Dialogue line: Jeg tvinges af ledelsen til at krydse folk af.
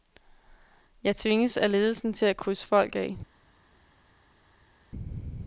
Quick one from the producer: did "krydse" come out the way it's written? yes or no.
yes